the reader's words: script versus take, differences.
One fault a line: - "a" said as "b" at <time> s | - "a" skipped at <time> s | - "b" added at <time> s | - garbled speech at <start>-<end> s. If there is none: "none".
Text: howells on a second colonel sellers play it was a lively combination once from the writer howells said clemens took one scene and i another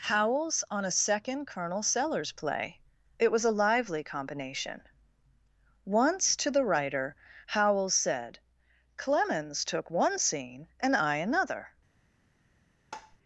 - "from" said as "to" at 6.4 s